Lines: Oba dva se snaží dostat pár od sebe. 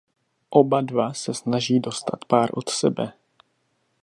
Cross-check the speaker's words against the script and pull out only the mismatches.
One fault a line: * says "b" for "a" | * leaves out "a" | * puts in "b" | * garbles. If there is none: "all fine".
all fine